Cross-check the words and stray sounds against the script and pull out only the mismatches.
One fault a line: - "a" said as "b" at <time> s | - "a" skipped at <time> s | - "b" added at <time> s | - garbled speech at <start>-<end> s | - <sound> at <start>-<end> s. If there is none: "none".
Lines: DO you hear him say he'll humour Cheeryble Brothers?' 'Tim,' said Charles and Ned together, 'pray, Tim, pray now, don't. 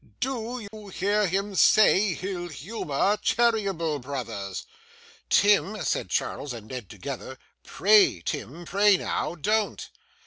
- dropout at 0.7-0.7 s